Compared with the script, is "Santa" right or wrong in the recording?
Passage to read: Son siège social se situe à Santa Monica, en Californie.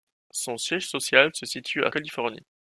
wrong